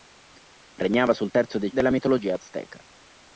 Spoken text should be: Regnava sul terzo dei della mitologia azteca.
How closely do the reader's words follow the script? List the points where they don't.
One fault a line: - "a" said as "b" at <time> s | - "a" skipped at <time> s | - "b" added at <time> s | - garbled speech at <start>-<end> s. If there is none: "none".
none